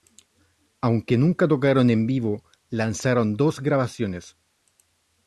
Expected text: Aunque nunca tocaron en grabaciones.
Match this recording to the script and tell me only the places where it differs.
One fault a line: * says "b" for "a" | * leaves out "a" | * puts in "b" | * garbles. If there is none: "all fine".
* puts in "vivo lanzaron dos"